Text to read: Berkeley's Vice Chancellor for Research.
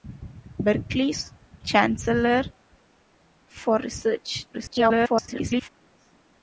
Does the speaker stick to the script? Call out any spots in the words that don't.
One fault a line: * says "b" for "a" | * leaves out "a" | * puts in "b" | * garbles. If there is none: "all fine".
* leaves out "Vice"
* garbles